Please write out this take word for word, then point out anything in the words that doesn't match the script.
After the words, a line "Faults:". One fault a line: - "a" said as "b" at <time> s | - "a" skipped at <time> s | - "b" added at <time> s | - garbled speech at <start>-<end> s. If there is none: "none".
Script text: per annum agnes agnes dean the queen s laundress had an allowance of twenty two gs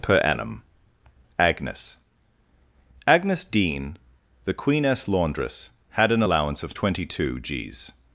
per annum agnes agnes dean the queen s laundress had an allowance of twenty two gs
Faults:
none